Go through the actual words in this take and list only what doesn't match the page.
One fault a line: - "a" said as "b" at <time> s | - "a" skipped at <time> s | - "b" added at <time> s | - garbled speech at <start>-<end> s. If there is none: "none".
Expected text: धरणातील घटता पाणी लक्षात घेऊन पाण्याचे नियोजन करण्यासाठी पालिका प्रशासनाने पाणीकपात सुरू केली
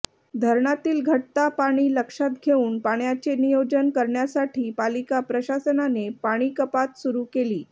none